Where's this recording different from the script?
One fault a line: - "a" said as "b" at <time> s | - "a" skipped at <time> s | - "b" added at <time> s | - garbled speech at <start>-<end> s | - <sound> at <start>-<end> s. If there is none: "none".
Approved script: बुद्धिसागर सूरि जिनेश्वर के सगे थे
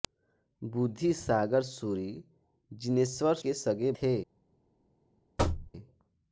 - thud at 5.4-5.7 s